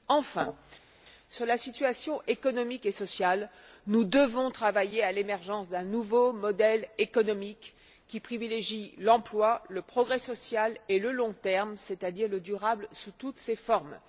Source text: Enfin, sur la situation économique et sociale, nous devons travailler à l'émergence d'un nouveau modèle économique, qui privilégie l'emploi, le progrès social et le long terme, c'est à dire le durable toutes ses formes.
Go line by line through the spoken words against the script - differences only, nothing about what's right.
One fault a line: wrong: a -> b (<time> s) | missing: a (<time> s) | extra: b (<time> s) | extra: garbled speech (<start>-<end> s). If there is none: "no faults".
extra: sous (12.9 s)